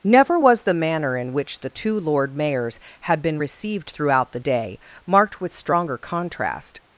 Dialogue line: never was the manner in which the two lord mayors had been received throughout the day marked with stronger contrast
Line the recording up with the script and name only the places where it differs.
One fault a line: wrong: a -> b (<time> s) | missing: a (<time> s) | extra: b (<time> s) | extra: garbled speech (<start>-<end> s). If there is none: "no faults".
no faults